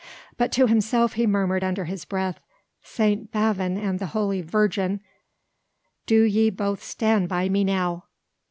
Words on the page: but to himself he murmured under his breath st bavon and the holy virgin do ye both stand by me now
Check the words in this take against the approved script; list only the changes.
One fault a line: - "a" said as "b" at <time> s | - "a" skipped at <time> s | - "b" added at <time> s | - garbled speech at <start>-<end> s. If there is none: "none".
none